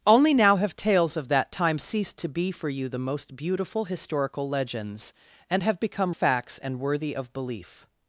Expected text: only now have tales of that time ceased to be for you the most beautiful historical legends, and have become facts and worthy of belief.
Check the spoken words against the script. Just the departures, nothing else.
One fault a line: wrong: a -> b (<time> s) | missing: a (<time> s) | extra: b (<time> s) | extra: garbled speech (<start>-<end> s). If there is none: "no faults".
no faults